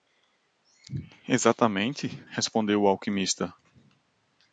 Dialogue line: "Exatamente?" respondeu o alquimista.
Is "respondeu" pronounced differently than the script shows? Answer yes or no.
no